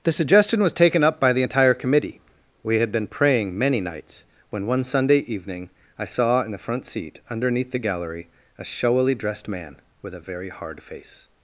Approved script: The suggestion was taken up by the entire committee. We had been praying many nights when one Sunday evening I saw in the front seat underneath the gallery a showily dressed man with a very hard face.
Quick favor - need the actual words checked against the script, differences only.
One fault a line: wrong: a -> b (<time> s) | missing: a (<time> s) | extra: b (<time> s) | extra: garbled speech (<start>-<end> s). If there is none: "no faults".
no faults